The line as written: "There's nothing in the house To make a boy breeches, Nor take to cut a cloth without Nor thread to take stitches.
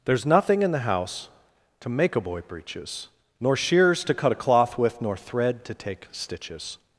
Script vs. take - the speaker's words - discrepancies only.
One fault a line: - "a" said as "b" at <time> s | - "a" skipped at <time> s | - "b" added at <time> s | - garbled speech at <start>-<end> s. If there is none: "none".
- "take" said as "shears" at 3.6 s
- "without" said as "with" at 4.8 s